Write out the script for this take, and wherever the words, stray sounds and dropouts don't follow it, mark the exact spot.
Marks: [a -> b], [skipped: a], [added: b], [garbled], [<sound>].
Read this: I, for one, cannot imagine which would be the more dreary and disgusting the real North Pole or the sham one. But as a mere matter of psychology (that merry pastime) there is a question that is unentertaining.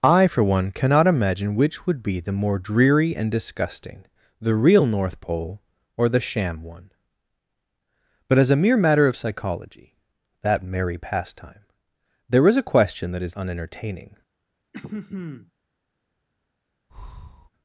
I, for one, cannot imagine which would be the more dreary and disgusting the real North Pole or the sham one. But as a mere matter of psychology (that merry pastime) there is a question that is unentertaining. [throat clearing] [breath]